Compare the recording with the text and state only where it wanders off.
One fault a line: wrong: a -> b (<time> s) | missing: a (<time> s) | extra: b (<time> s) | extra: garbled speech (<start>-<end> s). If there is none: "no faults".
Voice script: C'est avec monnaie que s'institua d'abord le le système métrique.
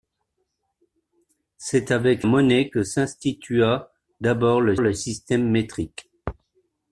no faults